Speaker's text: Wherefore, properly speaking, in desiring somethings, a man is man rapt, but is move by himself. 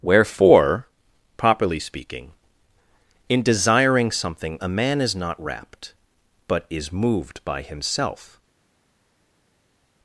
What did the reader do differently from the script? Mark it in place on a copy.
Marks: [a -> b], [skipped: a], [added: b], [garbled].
Wherefore, properly speaking, in desiring [somethings, -> something] a man is [man -> not] rapt, but is [move -> moved] by himself.